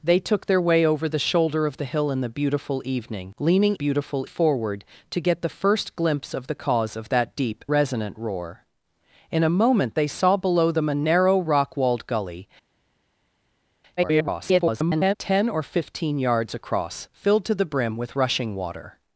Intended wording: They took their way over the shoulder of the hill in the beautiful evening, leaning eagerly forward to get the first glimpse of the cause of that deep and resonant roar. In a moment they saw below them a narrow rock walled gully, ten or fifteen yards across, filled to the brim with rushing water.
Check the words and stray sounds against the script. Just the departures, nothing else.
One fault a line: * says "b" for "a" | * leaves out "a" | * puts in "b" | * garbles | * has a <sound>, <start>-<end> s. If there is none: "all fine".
* says "beautiful" for "eagerly"
* leaves out "and"
* garbles